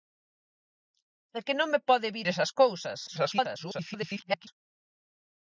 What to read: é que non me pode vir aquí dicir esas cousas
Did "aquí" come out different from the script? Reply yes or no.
yes